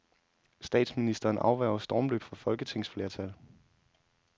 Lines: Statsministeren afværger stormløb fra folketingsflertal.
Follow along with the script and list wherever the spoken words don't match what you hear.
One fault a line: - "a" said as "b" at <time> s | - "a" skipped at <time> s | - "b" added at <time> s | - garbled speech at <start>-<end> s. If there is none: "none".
none